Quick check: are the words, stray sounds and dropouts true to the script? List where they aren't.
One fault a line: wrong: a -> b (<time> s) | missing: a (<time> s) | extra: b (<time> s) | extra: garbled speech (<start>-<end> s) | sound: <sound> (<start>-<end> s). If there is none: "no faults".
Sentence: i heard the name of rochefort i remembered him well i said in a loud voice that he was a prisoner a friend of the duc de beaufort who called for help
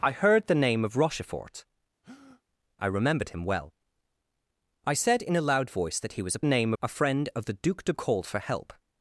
sound: breath (2.0-2.4 s)
wrong: prisoner -> name (6.4 s)
missing: beaufort who (7.9 s)